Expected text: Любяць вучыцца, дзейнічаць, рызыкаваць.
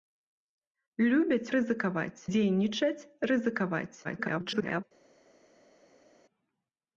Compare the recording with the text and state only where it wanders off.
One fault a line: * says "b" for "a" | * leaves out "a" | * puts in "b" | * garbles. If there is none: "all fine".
* says "рызыкаваць" for "вучыцца"
* garbles